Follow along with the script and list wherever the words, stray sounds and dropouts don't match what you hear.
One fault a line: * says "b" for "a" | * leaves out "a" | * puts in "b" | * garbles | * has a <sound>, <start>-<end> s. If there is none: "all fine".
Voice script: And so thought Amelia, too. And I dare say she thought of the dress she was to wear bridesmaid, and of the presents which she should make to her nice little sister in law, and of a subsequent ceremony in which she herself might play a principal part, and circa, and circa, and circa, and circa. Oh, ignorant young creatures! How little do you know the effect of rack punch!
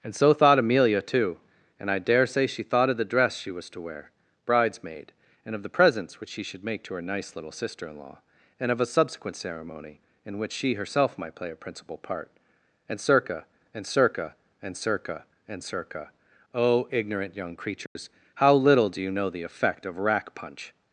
* has a dropout, 17.9-18.0 s